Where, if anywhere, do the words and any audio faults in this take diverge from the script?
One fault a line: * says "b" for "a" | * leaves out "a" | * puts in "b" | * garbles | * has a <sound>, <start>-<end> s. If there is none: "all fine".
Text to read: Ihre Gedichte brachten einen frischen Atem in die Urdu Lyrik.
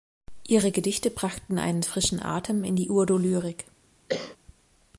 * has a cough, 4.1-4.4 s